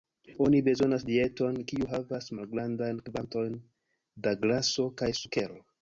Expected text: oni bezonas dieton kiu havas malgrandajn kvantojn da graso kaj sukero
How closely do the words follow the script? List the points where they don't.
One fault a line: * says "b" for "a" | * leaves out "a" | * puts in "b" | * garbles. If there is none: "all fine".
all fine